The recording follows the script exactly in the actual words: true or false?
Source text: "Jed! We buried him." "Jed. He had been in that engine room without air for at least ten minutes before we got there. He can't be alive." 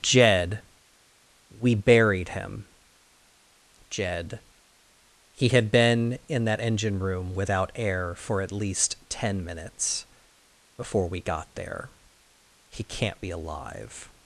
true